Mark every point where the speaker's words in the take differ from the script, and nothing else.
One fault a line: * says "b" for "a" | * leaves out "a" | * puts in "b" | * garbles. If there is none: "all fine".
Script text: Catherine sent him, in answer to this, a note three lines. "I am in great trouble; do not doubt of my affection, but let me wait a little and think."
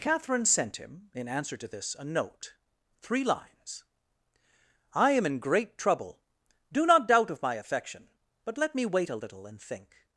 all fine